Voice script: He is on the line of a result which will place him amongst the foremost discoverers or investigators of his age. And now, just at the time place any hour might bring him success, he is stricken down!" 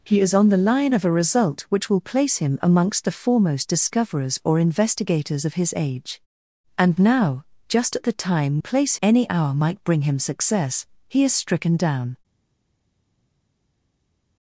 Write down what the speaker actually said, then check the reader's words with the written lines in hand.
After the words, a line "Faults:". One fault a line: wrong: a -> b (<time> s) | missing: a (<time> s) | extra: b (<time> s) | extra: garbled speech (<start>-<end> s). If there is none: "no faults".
He is on the line of a result which will place him amongst the foremost discoverers or investigators of his age. And now, just at the time place any hour might bring him success, he is stricken down!"
Faults:
no faults